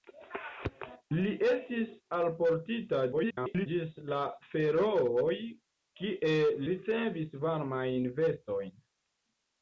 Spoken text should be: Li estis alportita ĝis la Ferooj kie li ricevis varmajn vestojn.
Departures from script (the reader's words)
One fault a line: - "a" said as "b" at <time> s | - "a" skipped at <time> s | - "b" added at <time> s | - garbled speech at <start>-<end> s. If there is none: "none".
- garbled speech at 3.1-3.7 s
- "li" skipped at 6.3 s